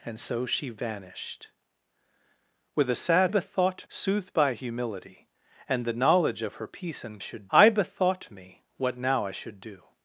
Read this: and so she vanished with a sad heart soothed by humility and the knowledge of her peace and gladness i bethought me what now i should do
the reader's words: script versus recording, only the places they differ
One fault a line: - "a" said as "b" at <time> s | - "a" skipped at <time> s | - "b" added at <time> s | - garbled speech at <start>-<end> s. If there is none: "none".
- "heart" said as "bethought" at 3.3 s
- "gladness" said as "should" at 7.2 s